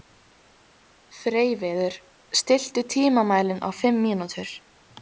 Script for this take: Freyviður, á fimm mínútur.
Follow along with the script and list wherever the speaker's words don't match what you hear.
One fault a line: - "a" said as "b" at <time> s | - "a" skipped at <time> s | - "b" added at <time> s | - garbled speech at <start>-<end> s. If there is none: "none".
- "stilltu tímamælinn" added at 2.4 s